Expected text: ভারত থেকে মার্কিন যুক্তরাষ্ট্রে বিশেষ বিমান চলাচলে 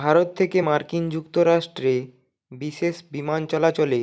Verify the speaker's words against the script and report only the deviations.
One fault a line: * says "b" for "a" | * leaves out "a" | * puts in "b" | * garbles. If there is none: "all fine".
all fine